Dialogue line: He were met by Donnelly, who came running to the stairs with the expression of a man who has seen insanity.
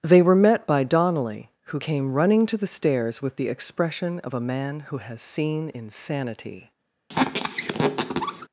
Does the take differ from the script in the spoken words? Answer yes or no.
yes